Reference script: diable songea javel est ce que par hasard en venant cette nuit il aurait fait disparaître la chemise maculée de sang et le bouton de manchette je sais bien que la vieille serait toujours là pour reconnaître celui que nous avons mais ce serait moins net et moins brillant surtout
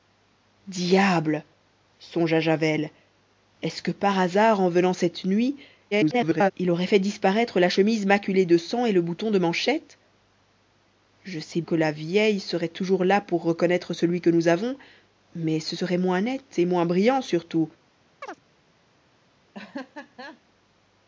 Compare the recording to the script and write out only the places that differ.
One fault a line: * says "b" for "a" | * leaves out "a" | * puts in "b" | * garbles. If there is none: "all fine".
* garbles
* leaves out "bien"